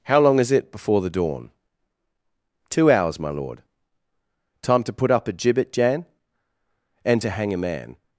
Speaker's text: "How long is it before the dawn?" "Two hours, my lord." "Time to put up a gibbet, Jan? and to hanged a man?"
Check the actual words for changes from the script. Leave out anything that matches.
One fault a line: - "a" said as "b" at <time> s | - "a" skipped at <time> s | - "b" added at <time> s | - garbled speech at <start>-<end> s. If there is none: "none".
- "hanged" said as "hang" at 7.3 s